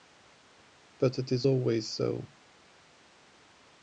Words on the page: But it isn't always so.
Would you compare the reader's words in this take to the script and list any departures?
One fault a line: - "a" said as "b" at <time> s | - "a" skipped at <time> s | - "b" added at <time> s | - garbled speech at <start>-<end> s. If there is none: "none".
- "isn't" said as "is" at 1.3 s